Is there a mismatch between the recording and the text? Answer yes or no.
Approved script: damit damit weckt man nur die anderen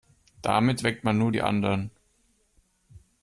yes